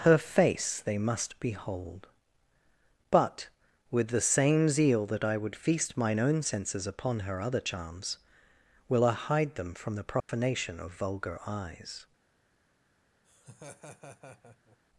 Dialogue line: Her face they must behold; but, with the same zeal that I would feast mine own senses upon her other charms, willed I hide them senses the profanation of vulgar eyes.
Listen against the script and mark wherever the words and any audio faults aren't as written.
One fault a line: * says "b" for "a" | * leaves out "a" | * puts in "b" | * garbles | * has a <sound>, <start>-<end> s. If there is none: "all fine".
* says "will" for "willed"
* says "from" for "senses"
* has a dropout, 10.2-10.3 s
* has a laugh, 13.2-14.8 s